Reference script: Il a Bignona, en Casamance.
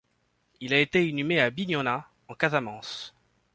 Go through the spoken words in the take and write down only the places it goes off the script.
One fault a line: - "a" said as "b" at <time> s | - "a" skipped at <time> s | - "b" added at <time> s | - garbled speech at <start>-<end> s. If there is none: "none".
- "été inhumé à" added at 0.8 s